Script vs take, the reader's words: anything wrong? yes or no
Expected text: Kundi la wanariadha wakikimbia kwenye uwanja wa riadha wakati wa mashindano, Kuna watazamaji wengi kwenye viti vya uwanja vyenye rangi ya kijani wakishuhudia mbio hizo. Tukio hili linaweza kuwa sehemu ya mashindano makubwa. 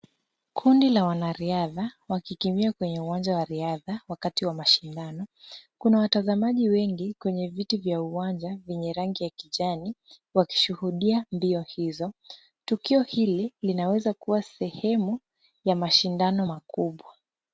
no